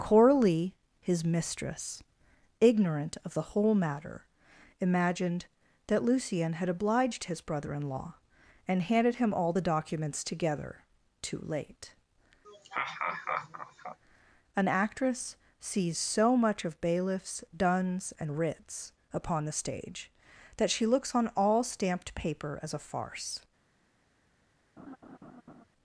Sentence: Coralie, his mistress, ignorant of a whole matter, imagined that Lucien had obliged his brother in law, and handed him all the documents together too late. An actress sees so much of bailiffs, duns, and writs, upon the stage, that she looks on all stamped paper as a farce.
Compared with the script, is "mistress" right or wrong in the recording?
right